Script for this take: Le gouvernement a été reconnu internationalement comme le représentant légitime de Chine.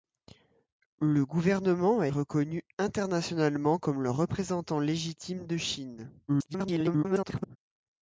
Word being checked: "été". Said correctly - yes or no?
no